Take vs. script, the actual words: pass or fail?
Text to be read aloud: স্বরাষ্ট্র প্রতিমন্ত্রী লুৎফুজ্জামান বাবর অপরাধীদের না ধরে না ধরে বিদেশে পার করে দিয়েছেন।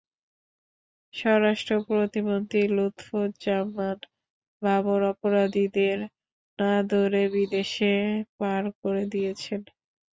fail